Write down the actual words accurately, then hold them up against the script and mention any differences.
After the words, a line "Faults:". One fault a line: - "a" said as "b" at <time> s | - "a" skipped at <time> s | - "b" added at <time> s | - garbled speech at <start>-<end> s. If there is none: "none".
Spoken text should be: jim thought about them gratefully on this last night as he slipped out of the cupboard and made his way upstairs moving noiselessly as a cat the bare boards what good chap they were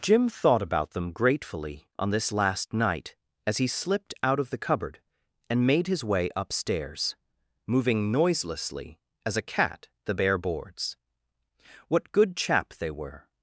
jim thought about them gratefully on this last night as he slipped out of the cupboard and made his way upstairs moving noiselessly as a cat the bare boards what good chap they were
Faults:
none